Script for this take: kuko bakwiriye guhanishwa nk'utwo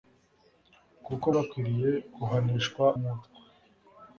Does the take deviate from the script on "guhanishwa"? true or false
false